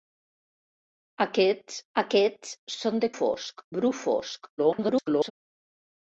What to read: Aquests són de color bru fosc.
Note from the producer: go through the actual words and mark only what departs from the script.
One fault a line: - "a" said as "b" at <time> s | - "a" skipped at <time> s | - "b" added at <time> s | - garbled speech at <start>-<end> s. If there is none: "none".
- "aquests" added at 2.0 s
- "color" said as "fosc" at 3.2 s
- garbled speech at 4.6-5.3 s